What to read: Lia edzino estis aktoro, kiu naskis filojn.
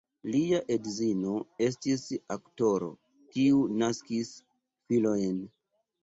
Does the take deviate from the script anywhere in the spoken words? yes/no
no